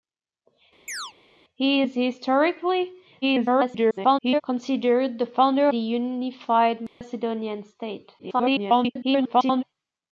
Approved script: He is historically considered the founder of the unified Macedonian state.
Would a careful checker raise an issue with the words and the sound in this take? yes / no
yes